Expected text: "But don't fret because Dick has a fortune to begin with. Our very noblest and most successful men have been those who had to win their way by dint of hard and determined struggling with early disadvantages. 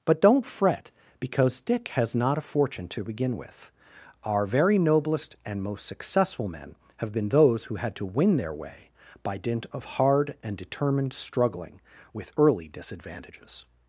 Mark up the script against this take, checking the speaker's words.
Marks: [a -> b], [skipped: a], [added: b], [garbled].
"But don't fret because Dick has [added: not] a fortune to begin with. Our very noblest and most successful men have been those who had to win their way by dint of hard and determined struggling with early disadvantages.